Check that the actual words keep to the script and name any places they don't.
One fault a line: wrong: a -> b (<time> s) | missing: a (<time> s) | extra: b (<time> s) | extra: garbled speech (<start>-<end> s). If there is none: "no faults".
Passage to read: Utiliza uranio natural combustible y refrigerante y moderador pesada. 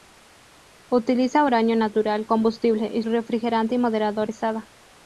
no faults